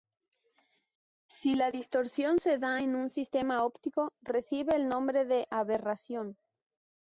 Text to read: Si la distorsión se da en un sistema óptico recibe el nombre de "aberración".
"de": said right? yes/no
yes